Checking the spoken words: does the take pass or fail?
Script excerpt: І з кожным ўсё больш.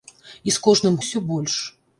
pass